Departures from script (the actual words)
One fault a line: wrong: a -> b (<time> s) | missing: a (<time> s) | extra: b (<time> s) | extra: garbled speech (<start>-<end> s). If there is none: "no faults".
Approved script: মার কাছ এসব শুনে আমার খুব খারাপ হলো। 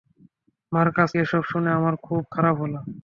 no faults